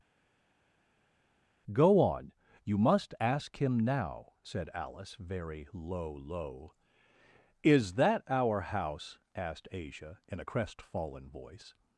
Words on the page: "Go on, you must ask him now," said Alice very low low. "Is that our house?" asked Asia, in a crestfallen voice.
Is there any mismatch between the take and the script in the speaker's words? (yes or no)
no